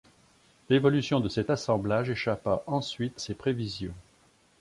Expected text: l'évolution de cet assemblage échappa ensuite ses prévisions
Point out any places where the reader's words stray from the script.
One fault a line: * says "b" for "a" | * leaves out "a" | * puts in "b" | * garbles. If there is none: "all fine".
all fine